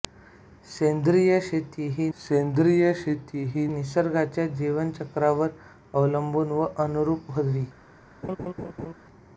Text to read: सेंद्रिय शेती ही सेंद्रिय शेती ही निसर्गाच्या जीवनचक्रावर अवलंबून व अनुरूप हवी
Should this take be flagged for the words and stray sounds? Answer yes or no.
yes